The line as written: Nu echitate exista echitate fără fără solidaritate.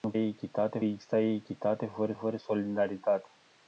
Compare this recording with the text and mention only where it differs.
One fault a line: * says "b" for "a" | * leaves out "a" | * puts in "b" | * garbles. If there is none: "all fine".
all fine